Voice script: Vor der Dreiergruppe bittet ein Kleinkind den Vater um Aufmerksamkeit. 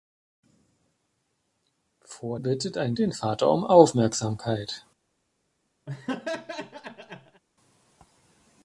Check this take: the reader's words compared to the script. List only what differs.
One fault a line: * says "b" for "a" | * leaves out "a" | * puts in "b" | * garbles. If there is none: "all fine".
* leaves out "der Dreiergruppe"
* leaves out "Kleinkind"